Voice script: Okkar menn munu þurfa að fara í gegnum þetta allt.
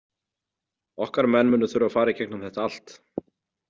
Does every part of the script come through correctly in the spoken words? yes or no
yes